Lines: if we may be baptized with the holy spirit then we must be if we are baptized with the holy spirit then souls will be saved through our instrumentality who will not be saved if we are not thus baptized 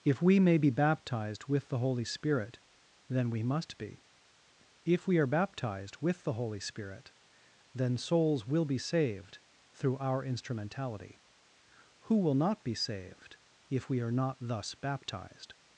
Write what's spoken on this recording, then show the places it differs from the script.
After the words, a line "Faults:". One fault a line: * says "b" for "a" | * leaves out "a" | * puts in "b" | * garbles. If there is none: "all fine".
if we may be baptized with the holy spirit then we must be if we are baptized with the holy spirit then souls will be saved through our instrumentality who will not be saved if we are not thus baptized
Faults:
all fine